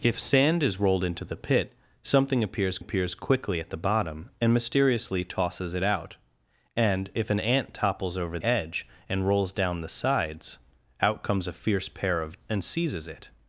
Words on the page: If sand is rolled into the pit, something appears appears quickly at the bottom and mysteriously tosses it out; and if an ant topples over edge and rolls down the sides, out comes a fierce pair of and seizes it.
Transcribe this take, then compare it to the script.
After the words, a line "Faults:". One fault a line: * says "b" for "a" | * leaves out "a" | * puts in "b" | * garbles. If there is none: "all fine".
If sand is rolled into the pit, something appears appears quickly at the bottom and mysteriously tosses it out; and if an ant topples over edge and rolls down the sides, out comes a fierce pair of and seizes it.
Faults:
all fine